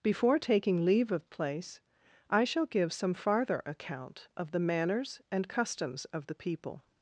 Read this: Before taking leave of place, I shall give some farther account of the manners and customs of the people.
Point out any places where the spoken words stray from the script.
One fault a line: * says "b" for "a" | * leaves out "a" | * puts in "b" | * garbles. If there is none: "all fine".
all fine